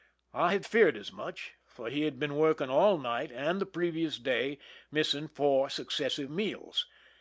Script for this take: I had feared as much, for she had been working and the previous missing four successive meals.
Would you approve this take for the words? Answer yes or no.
no